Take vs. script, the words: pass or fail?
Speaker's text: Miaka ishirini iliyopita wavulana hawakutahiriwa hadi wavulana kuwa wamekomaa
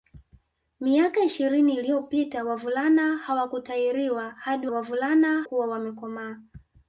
pass